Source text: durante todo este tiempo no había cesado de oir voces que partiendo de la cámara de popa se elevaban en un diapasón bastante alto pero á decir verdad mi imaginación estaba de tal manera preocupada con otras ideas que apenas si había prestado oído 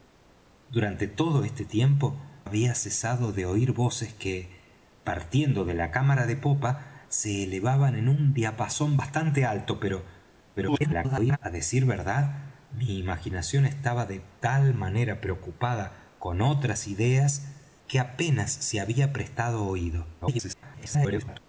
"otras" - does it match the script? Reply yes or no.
yes